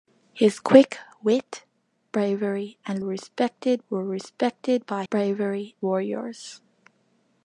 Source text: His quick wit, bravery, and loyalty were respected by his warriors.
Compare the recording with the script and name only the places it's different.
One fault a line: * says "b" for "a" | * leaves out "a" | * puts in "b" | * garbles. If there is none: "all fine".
* says "respected" for "loyalty"
* says "bravery" for "his"